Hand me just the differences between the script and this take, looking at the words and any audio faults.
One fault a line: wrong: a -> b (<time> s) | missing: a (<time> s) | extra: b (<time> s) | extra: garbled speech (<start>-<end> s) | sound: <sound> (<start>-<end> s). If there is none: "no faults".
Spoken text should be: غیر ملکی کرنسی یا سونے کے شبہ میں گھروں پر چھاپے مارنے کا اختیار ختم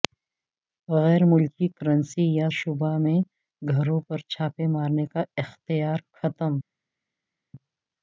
missing: سونے کے (2.5 s)